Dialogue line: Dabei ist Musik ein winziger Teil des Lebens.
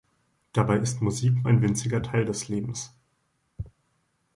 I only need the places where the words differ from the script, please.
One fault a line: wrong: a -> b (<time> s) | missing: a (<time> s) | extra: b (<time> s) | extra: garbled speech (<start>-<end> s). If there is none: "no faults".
no faults